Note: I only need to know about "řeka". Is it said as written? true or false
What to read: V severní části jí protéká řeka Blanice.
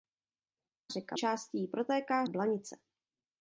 false